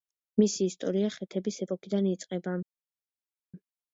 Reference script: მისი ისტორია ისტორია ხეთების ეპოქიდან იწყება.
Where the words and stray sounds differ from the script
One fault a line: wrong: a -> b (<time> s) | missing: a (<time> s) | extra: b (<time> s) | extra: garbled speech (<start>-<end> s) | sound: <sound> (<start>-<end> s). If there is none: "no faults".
missing: ისტორია (1.1 s)